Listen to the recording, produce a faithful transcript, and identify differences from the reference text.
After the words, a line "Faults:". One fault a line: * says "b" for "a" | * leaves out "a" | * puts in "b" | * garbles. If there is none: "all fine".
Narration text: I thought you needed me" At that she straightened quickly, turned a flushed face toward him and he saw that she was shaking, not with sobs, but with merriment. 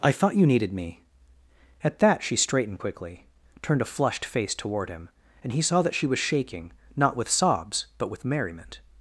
I thought you needed me" At that she straightened quickly, turned a flushed face toward him and he saw that she was shaking, not with sobs, but with merriment.
Faults:
all fine